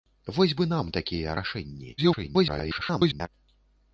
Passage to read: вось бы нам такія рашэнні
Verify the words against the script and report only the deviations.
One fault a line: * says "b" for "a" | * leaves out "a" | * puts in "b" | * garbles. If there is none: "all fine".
* garbles